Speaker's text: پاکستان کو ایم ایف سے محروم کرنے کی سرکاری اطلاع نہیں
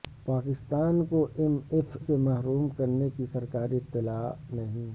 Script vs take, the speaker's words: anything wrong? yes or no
no